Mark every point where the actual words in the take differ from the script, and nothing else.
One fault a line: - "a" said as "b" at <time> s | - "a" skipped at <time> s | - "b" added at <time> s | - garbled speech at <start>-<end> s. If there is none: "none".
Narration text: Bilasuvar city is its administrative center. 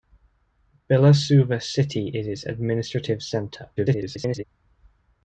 - garbled speech at 3.8-4.4 s